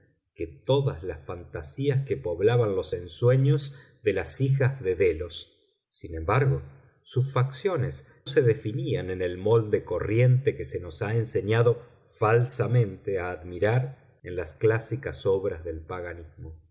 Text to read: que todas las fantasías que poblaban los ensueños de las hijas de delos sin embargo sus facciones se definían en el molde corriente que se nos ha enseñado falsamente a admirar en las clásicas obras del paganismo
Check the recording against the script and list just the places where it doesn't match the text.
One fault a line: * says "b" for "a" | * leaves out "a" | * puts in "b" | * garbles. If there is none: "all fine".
all fine